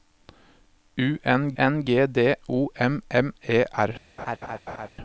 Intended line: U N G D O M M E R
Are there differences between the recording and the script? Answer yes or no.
yes